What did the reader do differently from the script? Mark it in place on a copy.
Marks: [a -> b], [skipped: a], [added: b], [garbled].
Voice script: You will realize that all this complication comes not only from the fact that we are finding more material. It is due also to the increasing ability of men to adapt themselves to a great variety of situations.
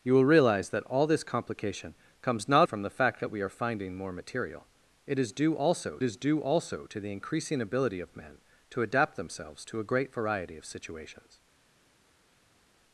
You will realize that all this complication comes not [skipped: only] from the fact that we are finding more material. It is due also [added: is due also] to the increasing ability of men to adapt themselves to a great variety of situations.